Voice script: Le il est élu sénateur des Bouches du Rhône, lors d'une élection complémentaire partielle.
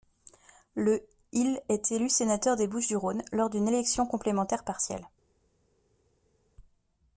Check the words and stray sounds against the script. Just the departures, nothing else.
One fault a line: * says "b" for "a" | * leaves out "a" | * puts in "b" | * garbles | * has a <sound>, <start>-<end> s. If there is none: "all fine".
all fine